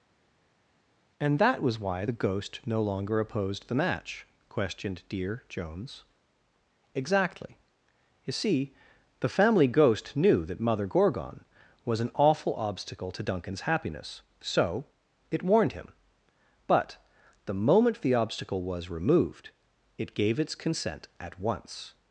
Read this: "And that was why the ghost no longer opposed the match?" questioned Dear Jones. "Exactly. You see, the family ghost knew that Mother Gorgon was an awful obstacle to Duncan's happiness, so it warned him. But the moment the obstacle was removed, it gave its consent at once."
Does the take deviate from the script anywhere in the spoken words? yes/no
no